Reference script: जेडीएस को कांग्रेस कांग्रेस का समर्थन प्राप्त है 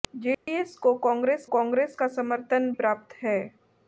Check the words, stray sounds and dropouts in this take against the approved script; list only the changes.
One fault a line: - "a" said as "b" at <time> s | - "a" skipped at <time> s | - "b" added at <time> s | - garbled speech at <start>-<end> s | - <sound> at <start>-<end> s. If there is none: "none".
- dropout at 0.3-0.5 s